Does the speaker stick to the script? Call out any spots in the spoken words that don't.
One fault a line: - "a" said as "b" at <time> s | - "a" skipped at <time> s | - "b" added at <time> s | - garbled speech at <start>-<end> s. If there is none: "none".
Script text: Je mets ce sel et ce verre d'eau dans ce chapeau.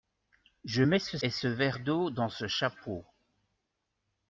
- "sel" skipped at 1.2 s